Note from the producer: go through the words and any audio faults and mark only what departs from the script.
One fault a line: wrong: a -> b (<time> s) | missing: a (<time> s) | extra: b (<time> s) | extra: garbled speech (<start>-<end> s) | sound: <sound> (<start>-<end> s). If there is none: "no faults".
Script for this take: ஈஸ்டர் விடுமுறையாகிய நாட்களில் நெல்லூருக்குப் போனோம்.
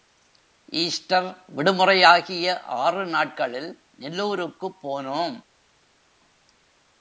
extra: ஆறு (2.6 s)